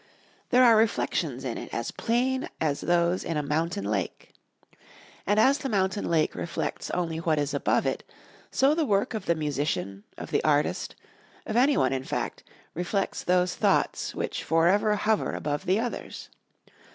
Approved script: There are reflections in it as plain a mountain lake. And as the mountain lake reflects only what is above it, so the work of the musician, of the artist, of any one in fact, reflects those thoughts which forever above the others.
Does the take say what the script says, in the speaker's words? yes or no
no